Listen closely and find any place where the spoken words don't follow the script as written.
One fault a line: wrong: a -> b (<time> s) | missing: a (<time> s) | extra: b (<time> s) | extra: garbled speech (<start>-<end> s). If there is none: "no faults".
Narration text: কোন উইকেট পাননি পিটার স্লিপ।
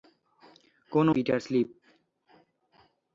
missing: উইকেট পাননি (1.1 s)